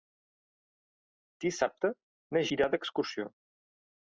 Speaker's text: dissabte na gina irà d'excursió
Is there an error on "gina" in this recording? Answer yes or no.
yes